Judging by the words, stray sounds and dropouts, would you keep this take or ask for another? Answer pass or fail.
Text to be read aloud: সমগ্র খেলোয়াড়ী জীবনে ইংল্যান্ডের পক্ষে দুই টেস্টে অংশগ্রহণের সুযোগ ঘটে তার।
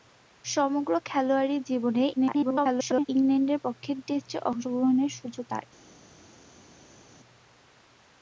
fail